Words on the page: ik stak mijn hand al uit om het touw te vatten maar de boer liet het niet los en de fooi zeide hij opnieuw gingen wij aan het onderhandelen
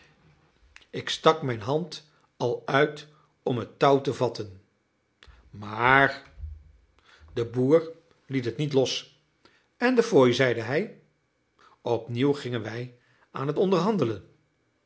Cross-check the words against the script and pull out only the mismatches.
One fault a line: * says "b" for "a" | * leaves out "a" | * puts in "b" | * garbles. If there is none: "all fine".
all fine